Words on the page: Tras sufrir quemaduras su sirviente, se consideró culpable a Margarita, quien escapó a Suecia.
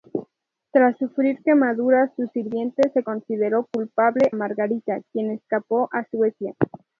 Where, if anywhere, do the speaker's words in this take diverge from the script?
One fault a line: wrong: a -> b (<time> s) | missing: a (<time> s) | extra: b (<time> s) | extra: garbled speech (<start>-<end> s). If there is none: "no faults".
missing: a (4.3 s)